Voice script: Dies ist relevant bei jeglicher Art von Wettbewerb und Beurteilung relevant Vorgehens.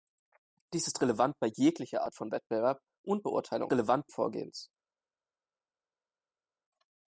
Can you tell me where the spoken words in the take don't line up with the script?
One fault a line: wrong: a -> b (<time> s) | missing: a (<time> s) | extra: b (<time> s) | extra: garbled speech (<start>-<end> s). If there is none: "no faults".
no faults